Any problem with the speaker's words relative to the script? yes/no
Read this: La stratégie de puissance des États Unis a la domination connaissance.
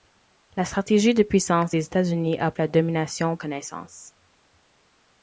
no